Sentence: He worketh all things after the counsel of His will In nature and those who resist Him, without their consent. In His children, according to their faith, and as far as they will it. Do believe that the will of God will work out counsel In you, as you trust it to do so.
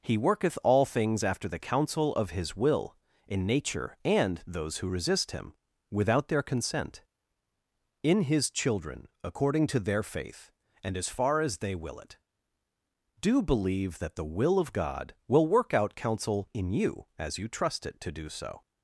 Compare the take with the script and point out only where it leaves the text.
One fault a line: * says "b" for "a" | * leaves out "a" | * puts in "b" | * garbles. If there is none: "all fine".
all fine